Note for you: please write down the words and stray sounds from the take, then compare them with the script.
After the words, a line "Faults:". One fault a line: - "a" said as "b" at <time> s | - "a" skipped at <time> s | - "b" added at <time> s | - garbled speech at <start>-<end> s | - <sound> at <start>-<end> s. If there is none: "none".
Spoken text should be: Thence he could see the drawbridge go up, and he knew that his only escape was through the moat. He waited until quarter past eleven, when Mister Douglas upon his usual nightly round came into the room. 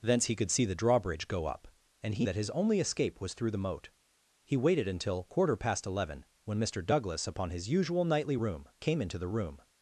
Thence he could see the drawbridge go up, and he that his only escape was through the moat. He waited until quarter past eleven, when Mister Douglas upon his usual nightly room came into the room.
Faults:
- "knew" skipped at 2.3 s
- "round" said as "room" at 8.4 s